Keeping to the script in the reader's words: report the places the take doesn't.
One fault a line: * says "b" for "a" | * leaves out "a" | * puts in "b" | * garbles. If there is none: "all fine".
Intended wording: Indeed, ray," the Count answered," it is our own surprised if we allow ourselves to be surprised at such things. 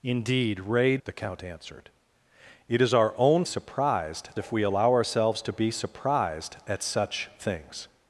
all fine